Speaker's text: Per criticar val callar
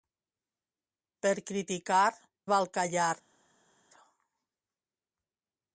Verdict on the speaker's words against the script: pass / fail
pass